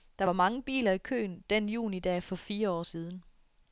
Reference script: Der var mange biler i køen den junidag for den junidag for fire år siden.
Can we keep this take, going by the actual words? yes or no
no